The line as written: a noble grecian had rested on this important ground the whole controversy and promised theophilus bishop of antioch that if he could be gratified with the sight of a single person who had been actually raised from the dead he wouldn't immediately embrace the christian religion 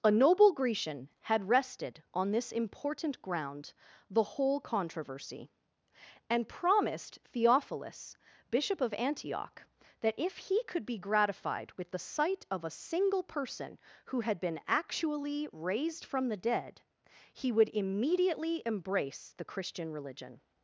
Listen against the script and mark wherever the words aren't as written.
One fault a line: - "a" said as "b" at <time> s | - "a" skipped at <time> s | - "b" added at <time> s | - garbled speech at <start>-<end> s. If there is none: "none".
- "wouldn't" said as "would" at 17.5 s